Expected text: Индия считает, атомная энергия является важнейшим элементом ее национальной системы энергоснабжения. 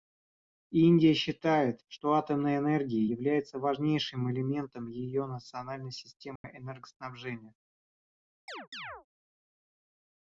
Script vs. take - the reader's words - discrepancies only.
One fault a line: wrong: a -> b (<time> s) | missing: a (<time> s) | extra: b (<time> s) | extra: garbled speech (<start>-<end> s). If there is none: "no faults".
extra: что (1.9 s)